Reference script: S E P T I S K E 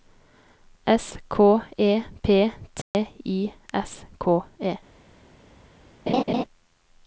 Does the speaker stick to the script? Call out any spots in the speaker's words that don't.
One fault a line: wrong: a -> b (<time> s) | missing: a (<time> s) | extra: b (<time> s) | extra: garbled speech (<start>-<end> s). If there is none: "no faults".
extra: K (1.3 s)